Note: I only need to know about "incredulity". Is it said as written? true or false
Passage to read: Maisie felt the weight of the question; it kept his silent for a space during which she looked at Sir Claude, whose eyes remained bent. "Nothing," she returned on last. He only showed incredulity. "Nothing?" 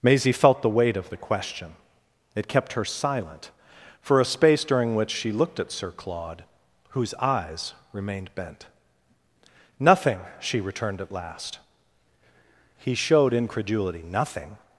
true